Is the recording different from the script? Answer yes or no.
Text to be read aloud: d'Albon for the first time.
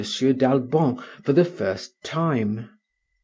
no